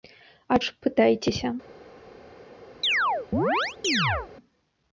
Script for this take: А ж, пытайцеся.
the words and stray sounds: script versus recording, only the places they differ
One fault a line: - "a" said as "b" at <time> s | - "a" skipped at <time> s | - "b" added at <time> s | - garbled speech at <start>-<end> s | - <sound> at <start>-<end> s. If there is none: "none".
- chirp at 2.8-4.3 s